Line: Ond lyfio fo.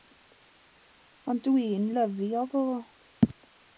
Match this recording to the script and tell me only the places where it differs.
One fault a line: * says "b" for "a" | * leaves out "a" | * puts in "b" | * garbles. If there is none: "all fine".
* puts in "dwi'n"